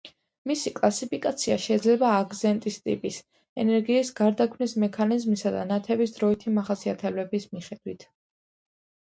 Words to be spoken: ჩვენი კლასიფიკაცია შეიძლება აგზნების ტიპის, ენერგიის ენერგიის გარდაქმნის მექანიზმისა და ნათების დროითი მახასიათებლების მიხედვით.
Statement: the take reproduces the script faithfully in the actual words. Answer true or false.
false